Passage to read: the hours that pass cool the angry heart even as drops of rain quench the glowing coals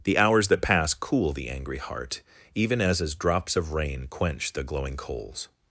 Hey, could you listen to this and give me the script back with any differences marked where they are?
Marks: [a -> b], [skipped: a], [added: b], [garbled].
the hours that pass cool the angry heart even as [added: as] drops of rain quench the glowing coals